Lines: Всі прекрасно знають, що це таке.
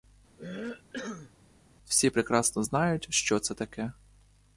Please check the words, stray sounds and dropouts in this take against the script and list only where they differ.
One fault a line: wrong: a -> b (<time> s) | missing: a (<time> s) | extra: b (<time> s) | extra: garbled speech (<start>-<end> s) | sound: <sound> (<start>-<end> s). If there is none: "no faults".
sound: cough (0.4-1.3 s)